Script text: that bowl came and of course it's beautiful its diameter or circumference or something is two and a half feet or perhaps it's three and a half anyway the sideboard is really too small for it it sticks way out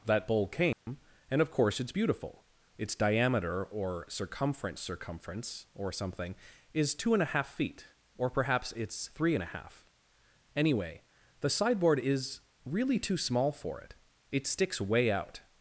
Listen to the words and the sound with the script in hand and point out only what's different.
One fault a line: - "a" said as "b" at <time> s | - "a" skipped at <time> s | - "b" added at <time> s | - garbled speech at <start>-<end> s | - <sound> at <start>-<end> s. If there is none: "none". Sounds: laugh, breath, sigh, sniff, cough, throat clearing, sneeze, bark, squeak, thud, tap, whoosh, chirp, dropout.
- dropout at 0.7-0.9 s
- "circumference" added at 4.8 s